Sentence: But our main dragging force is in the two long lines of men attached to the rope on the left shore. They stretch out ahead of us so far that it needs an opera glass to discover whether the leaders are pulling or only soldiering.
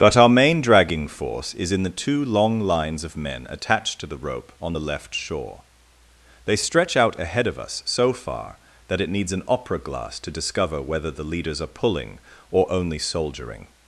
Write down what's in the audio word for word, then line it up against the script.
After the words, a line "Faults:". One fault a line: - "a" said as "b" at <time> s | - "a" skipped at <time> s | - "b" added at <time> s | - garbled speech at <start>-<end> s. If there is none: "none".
But our main dragging force is in the two long lines of men attached to the rope on the left shore. They stretch out ahead of us so far that it needs an opera glass to discover whether the leaders are pulling or only soldiering.
Faults:
none